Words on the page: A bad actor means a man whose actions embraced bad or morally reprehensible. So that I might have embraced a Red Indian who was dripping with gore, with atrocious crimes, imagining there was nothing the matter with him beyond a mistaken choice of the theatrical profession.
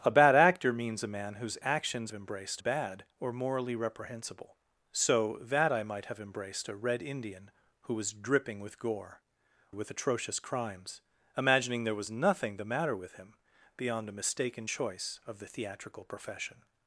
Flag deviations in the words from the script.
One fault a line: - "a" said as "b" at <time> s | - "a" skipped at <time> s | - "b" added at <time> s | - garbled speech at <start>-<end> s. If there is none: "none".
none